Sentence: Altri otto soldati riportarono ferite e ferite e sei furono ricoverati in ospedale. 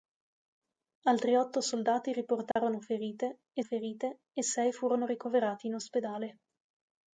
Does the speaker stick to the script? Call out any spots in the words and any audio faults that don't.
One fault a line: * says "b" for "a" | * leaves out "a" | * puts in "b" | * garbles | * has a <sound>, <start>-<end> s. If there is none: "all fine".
* has a dropout, 2.5-2.6 s